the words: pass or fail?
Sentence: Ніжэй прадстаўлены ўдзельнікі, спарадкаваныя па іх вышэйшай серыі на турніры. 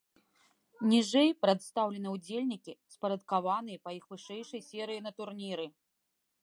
pass